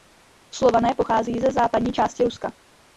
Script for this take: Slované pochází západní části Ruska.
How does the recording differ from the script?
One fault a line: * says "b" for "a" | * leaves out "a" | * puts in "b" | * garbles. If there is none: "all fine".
* puts in "ze"